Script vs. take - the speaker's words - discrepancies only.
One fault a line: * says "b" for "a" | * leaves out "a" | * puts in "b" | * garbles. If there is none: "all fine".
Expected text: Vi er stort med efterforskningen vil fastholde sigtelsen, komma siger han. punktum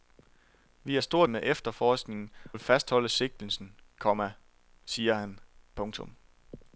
all fine